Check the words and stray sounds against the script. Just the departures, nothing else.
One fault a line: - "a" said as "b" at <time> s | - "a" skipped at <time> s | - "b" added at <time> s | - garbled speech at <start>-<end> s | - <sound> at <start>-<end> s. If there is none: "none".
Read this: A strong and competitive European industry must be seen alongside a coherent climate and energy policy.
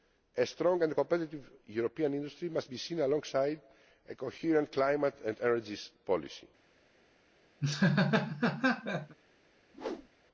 - laugh at 7.6-9.2 s
- whoosh at 9.7-10.1 s